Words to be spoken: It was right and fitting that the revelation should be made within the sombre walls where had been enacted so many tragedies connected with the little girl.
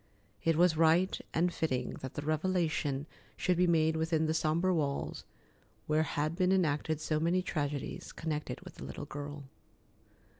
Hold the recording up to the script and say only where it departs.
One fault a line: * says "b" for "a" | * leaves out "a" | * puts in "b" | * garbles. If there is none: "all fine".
all fine